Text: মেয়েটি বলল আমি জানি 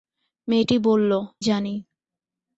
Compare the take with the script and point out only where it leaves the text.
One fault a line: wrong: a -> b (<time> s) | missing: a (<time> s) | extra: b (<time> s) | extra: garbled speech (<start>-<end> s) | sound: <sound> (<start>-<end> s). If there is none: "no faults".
missing: আমি (1.1 s)